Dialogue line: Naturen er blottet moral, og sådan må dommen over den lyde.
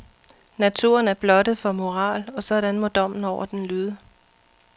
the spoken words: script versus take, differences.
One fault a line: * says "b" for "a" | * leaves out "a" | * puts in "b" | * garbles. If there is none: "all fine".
* puts in "for"